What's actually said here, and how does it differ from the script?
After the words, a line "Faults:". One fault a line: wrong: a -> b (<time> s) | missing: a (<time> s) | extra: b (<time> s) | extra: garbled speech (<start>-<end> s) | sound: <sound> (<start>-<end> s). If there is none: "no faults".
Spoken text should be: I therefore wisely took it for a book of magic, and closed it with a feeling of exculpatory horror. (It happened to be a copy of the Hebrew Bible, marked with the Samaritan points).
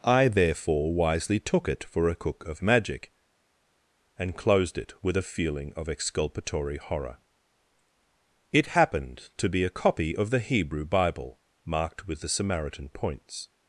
I therefore wisely took it for a cook of magic, and closed it with a feeling of exculpatory horror. (It happened to be a copy of the Hebrew Bible, marked with the Samaritan points).
Faults:
wrong: book -> cook (2.1 s)